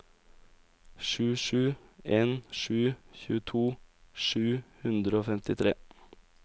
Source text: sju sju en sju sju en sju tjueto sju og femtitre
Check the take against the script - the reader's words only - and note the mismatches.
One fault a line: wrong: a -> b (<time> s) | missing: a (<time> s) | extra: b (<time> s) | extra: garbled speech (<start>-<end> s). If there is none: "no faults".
wrong: sju en -> tjueto (3.2 s)
wrong: tjueto sju -> hundre (4.8 s)